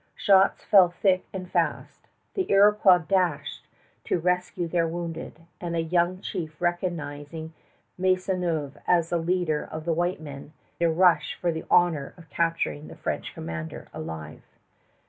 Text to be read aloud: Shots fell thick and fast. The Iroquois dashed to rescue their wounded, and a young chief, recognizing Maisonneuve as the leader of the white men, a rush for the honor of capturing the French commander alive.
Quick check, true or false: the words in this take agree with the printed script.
true